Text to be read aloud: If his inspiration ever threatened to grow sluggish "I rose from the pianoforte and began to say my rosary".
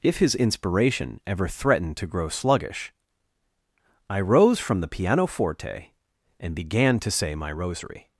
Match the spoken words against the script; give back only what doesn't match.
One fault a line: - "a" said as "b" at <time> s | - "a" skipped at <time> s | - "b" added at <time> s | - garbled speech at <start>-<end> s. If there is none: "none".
none